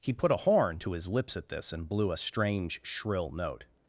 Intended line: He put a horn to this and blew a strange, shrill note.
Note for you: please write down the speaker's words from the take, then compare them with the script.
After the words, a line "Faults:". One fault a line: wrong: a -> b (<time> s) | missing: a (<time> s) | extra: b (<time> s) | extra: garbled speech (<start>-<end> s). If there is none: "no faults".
He put a horn to his lips at this and blew a strange, shrill note.
Faults:
extra: his lips at (0.9 s)